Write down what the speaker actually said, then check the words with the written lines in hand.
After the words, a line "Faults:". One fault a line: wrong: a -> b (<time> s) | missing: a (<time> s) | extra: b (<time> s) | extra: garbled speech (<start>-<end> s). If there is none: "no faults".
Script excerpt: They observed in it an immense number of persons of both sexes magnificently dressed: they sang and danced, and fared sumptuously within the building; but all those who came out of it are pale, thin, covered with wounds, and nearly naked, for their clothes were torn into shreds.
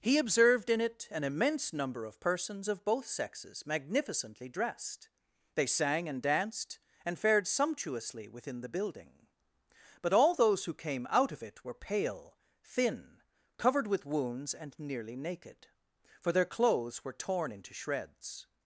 He observed in it an immense number of persons of both sexes magnificently dressed: they sang and danced, and fared sumptuously within the building; but all those who came out of it were pale, thin, covered with wounds, and nearly naked, for their clothes were torn into shreds.
Faults:
wrong: They -> He (0.0 s)
wrong: are -> were (11.6 s)